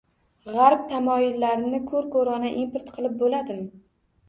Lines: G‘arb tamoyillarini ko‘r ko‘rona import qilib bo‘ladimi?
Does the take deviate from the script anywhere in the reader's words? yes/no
no